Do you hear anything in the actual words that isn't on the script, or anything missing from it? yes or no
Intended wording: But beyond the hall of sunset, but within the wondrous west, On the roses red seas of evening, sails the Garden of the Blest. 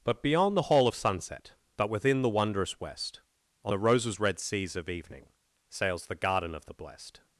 no